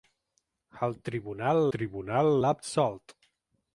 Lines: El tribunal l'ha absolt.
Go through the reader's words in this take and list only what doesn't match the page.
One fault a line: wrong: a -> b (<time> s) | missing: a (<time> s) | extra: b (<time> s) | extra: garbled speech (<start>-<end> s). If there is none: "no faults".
extra: tribunal (1.8 s)